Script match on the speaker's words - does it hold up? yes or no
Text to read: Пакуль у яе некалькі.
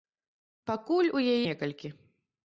yes